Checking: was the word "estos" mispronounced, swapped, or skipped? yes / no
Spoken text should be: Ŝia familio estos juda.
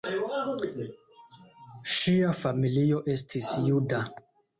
yes